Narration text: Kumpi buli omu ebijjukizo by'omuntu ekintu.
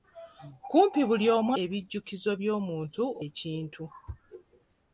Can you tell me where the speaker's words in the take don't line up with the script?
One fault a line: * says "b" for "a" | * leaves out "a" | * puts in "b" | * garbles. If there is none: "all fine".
all fine